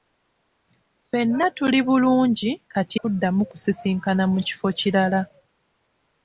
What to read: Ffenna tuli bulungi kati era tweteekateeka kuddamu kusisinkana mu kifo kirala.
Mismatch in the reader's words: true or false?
true